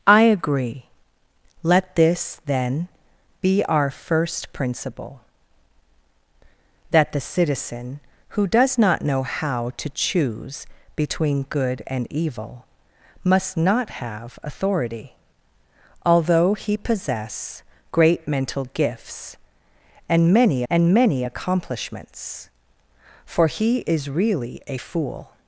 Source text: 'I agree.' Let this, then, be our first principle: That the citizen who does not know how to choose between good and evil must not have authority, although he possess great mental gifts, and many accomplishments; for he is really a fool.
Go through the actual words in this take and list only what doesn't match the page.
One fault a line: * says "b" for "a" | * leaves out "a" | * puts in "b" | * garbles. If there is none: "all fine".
* puts in "and many"